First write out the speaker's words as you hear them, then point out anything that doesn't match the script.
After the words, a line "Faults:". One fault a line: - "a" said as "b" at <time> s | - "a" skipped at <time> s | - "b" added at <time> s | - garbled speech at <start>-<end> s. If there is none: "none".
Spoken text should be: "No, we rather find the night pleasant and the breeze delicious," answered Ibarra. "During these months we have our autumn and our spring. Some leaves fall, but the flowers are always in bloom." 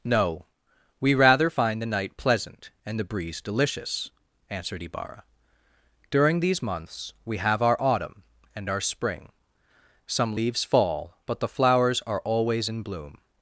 "No, we rather find the night pleasant and the breeze delicious," answered Ibarra. "During these months we have our autumn and our spring. Some leaves fall, but the flowers are always in bloom."
Faults:
none